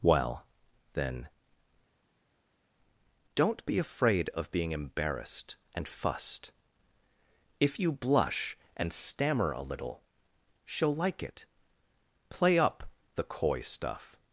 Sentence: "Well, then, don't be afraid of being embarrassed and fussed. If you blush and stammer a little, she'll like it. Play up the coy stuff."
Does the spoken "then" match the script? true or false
true